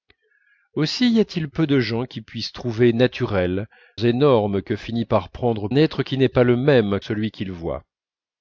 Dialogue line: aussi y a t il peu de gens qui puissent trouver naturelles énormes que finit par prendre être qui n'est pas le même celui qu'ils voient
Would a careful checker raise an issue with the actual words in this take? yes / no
no